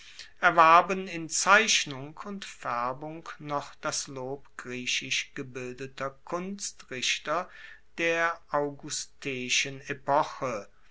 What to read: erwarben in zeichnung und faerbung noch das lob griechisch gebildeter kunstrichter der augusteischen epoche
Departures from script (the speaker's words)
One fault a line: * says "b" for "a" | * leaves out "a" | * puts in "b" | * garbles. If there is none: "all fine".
all fine